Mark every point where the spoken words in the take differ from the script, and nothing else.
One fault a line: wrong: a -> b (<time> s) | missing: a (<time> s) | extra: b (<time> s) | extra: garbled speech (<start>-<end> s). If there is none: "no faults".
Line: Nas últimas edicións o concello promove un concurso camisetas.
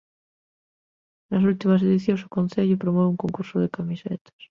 extra: de (3.6 s)